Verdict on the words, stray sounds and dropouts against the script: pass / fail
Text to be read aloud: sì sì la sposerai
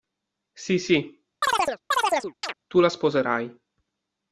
fail